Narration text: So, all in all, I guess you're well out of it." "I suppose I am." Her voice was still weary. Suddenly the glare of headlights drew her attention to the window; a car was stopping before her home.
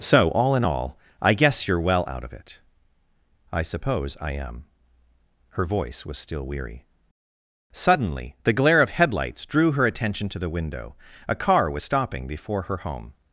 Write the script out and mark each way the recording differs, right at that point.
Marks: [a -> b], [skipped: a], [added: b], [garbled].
So, all in all, I guess you're well out of it." "I suppose I am." Her voice was still weary. Suddenly the glare of headlights drew her attention to the window; a car was stopping before her home.